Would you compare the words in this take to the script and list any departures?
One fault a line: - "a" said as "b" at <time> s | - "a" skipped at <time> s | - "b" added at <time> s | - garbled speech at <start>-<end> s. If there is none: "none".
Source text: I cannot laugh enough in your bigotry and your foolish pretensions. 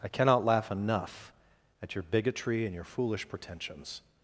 - "in" said as "at" at 1.8 s